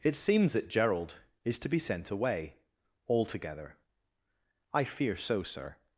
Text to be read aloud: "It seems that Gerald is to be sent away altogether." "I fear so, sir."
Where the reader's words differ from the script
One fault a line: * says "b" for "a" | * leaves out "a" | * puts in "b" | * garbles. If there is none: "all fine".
all fine